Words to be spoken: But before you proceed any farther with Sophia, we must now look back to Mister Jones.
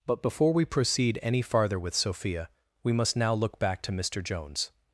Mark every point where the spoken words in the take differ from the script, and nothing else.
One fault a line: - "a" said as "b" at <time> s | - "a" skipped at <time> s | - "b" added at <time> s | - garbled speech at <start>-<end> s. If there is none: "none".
- "you" said as "we" at 0.5 s